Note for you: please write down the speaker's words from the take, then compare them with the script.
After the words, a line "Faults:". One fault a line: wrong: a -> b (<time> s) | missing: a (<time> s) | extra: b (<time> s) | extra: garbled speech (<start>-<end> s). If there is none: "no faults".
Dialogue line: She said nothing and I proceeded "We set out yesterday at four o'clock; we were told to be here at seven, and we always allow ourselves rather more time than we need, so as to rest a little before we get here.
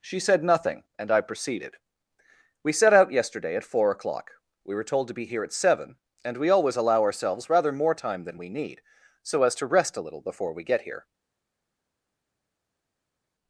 She said nothing and I proceeded "We set out yesterday at four o'clock; we were told to be here at seven, and we always allow ourselves rather more time than we need, so as to rest a little before we get here.
Faults:
no faults